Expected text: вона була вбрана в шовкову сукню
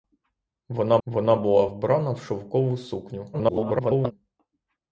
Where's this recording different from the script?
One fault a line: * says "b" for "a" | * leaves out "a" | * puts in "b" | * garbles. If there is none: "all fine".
* puts in "вона"
* garbles